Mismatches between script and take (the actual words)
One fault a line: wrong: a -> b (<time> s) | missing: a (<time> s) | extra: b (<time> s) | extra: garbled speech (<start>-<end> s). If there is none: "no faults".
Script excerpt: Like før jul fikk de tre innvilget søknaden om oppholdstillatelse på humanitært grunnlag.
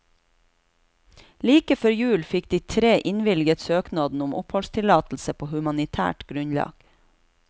no faults